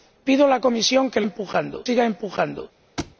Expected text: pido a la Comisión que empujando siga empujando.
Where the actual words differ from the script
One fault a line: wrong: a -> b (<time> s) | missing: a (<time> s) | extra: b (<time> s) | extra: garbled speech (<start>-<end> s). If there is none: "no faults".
no faults